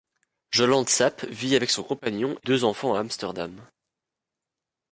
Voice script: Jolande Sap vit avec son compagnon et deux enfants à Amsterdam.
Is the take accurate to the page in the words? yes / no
yes